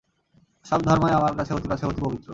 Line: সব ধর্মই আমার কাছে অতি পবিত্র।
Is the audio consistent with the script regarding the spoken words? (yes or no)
no